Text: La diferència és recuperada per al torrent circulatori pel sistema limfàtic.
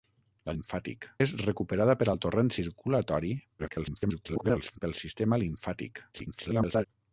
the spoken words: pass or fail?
fail